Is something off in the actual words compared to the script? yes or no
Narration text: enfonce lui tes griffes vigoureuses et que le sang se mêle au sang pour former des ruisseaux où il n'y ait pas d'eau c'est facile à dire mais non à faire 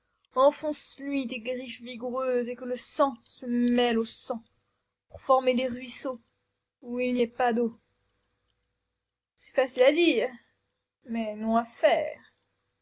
no